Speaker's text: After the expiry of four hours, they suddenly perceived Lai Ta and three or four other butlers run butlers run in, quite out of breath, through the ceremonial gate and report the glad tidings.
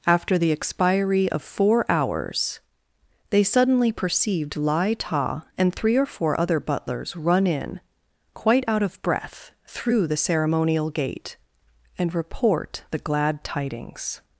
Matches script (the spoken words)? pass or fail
fail